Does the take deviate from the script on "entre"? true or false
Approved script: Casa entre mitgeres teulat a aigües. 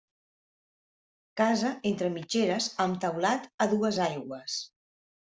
false